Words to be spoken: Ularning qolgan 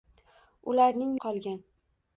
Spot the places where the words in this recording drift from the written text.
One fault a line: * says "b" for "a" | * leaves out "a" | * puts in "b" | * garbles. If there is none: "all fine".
all fine